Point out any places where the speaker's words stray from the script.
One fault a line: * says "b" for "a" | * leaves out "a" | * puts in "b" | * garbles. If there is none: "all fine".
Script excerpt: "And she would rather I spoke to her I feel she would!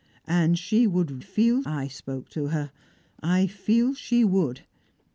* says "feel" for "rather"